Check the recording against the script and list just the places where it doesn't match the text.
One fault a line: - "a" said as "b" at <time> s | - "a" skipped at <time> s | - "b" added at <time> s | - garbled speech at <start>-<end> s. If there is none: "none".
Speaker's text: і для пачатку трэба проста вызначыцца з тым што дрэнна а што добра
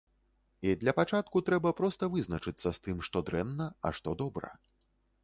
none